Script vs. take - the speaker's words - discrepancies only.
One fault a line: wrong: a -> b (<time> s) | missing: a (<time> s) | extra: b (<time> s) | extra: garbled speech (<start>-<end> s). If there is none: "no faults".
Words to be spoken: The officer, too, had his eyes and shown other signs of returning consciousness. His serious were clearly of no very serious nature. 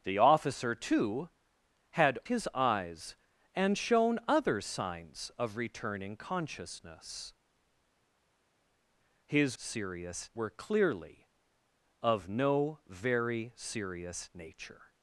no faults